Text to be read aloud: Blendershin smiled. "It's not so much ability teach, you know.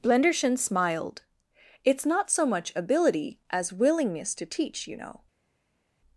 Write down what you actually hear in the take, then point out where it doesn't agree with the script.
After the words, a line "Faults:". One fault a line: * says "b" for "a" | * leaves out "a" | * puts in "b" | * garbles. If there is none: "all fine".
Blendershin smiled. "It's not so much ability as willingness to teach, you know.
Faults:
* puts in "as willingness to"